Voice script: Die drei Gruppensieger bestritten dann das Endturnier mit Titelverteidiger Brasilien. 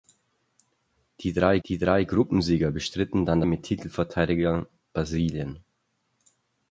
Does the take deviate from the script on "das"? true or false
true